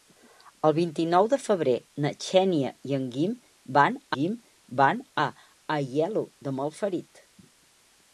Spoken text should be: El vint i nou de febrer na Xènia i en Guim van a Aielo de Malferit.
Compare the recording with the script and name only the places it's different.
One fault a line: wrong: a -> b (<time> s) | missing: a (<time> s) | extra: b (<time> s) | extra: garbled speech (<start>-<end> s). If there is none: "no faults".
extra: Guim van (4.2 s)